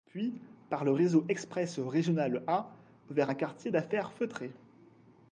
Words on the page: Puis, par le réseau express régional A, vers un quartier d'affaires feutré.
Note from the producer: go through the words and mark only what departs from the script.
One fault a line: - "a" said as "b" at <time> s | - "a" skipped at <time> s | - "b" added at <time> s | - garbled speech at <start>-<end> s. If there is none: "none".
none